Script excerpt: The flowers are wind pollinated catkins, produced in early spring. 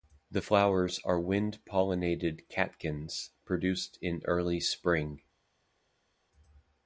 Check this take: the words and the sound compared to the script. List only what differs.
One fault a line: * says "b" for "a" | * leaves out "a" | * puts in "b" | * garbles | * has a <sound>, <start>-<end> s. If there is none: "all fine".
all fine